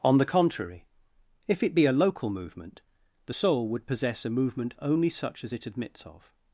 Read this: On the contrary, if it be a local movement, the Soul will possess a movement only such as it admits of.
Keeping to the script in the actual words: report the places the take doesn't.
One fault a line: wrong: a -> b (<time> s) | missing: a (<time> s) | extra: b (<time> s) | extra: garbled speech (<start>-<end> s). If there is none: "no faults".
wrong: will -> would (3.7 s)